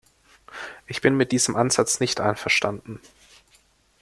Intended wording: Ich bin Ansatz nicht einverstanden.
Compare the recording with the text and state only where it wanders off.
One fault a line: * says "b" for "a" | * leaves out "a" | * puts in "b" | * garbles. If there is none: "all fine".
* puts in "mit diesem"